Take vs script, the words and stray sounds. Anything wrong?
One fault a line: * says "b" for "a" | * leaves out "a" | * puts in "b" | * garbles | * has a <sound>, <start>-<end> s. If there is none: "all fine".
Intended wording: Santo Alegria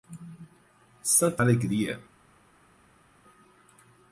all fine